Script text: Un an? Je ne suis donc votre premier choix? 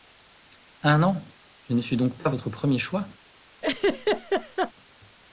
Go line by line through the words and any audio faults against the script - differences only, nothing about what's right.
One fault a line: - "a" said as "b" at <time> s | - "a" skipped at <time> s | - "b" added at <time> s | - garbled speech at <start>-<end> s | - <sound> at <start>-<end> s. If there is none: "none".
- "pas" added at 2.2 s
- laugh at 3.6-4.7 s